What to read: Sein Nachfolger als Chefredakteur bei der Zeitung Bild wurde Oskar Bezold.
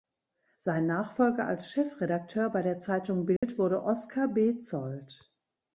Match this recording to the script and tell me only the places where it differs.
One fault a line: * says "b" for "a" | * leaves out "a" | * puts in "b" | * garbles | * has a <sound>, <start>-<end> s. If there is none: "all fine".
* has a dropout, 3.4-3.4 s